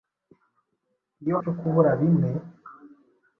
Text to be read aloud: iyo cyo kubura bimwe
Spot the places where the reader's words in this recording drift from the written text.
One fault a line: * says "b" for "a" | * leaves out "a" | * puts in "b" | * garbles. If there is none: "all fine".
all fine